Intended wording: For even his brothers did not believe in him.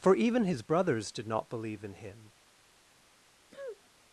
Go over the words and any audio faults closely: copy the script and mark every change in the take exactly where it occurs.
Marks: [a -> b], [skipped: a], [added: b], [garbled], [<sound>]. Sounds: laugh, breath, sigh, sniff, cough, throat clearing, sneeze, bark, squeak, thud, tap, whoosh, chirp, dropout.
For even his brothers did not believe in him. [sniff]